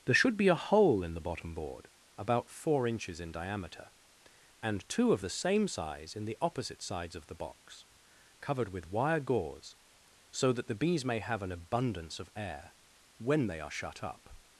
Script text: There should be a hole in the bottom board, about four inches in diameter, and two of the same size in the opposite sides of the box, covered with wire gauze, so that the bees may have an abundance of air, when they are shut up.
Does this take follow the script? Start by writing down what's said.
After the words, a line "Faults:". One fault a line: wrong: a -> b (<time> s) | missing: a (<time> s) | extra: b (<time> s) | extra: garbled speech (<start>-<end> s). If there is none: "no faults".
There should be a hole in the bottom board, about four inches in diameter, and two of the same size in the opposite sides of the box, covered with wire gauze, so that the bees may have an abundance of air, when they are shut up.
Faults:
no faults